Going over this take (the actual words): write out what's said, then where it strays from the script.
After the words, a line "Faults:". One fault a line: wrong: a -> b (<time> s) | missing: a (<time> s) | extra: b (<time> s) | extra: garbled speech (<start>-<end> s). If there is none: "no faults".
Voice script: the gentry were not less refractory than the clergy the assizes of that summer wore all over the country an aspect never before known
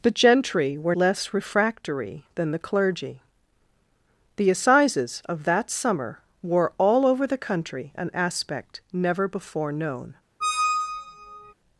the gentry were less refractory than the clergy the assizes of that summer wore all over the country an aspect never before known
Faults:
missing: not (0.9 s)